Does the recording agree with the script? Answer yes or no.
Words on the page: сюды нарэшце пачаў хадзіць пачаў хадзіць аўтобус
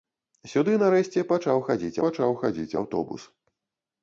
yes